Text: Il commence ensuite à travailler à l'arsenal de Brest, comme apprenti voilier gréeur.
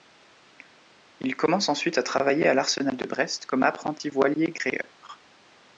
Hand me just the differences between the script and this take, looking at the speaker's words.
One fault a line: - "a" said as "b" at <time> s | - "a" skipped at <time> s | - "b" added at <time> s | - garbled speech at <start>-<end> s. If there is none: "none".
none